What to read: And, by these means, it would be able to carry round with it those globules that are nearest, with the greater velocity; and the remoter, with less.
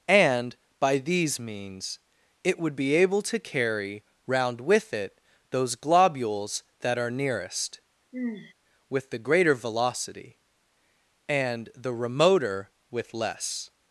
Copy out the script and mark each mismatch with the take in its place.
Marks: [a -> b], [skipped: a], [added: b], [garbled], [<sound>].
And, by these means, it would be able to carry round with it those globules that are nearest, [sigh] with the greater velocity; and the remoter, with less.